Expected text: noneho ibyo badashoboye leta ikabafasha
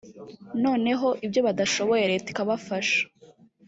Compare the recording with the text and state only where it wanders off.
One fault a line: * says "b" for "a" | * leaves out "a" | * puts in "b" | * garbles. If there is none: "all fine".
all fine